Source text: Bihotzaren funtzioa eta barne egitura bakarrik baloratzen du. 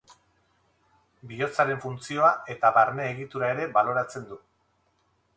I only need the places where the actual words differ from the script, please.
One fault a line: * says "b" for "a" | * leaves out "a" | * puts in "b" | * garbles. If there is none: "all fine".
* says "ere" for "bakarrik"